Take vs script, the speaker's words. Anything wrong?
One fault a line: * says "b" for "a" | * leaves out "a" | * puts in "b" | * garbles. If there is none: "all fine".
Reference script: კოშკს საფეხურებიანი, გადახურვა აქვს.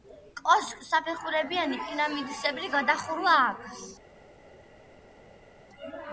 * puts in "პირამიდისებრი"